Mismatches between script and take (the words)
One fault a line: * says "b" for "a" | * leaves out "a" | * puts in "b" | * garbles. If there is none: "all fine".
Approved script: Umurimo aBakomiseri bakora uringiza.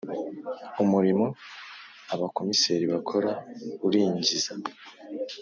all fine